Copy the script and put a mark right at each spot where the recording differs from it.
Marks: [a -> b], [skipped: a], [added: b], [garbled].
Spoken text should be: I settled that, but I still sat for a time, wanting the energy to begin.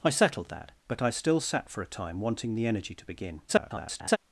I settled that, but I still sat for a time, wanting the energy to begin. [garbled]